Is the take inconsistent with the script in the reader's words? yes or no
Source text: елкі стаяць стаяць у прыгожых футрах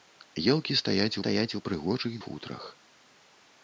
no